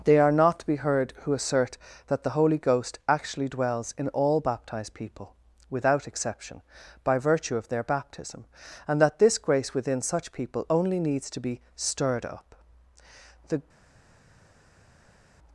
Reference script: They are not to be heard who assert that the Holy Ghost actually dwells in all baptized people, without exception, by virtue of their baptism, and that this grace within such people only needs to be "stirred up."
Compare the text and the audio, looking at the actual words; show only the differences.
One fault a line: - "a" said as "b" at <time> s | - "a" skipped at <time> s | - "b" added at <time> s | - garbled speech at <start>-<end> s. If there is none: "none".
- "The" added at 13.5 s